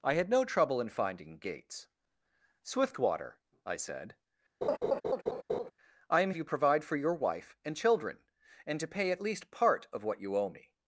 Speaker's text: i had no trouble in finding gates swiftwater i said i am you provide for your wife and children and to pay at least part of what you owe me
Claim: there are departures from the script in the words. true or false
false